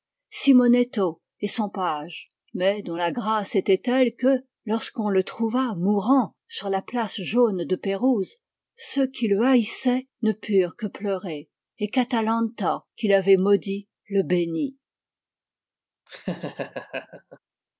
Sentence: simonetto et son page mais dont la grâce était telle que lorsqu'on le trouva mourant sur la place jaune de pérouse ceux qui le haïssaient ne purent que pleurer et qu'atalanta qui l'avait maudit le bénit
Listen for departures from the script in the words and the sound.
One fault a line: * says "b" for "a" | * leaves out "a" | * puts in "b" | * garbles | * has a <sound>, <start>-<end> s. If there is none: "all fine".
* has a laugh, 16.1-17.4 s